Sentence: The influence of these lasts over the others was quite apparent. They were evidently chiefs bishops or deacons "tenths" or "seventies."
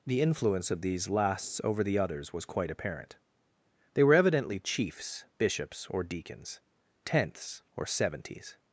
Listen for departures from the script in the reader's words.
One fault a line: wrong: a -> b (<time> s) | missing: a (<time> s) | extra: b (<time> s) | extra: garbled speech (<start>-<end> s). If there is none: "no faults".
no faults